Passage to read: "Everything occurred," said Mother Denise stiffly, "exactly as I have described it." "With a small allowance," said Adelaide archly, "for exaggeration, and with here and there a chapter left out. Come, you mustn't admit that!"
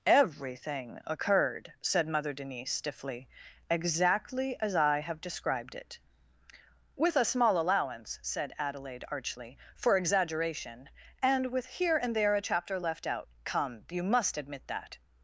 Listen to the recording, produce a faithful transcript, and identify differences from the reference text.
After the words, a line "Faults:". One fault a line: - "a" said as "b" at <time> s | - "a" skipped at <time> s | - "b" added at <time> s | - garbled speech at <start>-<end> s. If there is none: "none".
"Everything occurred," said Mother Denise stiffly, "exactly as I have described it." "With a small allowance," said Adelaide archly, "for exaggeration, and with here and there a chapter left out. Come, you must admit that!"
Faults:
- "mustn't" said as "must" at 14.0 s